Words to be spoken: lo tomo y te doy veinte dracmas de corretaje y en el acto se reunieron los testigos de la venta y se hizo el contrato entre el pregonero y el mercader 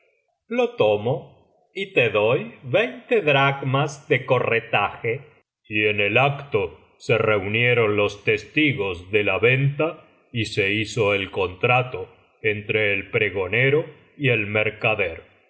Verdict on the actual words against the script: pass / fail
pass